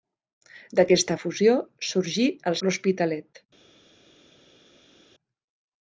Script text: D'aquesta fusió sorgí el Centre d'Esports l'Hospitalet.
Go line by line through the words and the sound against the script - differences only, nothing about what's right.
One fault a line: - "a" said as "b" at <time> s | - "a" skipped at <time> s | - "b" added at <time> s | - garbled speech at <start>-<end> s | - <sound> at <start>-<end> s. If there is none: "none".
- "Centre d'Esports" skipped at 2.6 s